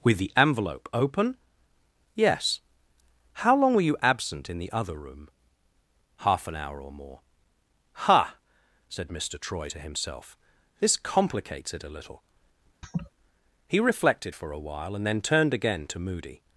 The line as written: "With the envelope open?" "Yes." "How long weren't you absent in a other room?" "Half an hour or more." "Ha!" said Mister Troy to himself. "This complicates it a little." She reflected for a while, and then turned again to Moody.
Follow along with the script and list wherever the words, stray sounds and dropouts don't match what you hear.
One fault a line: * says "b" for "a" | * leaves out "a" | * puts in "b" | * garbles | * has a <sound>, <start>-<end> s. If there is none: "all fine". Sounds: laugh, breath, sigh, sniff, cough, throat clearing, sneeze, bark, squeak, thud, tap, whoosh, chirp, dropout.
* says "were" for "weren't"
* says "the" for "a"
* has a laugh, 12.8-13.1 s
* says "He" for "She"